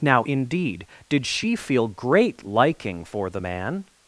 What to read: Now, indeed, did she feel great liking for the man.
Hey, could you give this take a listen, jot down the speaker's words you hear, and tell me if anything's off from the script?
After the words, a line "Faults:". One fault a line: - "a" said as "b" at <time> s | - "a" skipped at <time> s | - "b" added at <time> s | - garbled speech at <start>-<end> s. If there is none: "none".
Now, indeed, did she feel great liking for the man.
Faults:
none